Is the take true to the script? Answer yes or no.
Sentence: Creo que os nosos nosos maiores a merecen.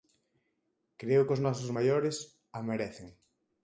no